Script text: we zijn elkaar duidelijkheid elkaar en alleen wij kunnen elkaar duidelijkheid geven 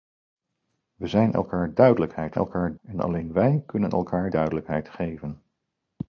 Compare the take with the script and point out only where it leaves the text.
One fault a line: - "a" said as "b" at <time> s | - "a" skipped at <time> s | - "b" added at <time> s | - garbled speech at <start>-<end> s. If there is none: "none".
none